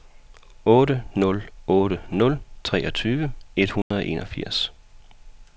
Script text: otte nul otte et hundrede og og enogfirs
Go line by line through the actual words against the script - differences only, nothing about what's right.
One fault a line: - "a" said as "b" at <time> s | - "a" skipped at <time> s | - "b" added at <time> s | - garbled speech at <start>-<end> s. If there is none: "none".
- "nul treogtyve" added at 2.1 s
- "og" skipped at 4.1 s